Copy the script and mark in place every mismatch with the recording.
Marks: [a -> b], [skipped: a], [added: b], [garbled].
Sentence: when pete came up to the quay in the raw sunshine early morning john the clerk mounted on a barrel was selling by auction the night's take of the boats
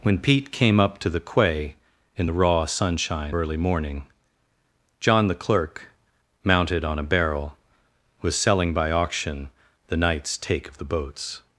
when pete came up to the quay in the raw sunshine early morning john the clerk mounted on a barrel was selling by auction the night's take of the boats